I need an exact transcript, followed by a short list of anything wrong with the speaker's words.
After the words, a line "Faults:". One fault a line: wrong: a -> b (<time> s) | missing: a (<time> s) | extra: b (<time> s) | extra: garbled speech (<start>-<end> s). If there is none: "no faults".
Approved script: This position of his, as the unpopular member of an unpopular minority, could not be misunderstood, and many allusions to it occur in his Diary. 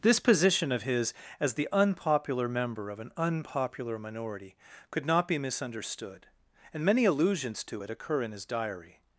This position of his, as the unpopular member of an unpopular minority, could not be misunderstood, and many allusions to it occur in his Diary.
Faults:
no faults